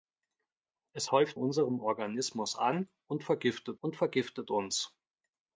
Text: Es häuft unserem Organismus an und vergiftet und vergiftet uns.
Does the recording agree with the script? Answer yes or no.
yes